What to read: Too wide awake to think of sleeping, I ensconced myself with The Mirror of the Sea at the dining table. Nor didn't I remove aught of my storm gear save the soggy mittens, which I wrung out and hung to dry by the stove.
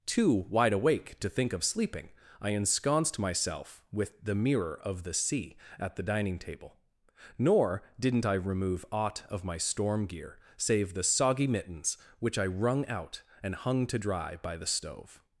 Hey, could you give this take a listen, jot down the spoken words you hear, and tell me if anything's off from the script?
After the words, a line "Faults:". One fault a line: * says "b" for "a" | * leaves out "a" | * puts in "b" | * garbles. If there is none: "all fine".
Too wide awake to think of sleeping, I ensconced myself with The Mirror of the Sea at the dining table. Nor didn't I remove aught of my storm gear save the soggy mittens, which I wrung out and hung to dry by the stove.
Faults:
all fine